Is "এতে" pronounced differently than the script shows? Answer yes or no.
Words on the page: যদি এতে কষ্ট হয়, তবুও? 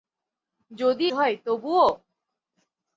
yes